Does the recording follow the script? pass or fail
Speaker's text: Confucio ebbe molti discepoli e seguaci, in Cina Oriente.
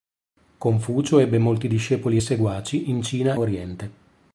pass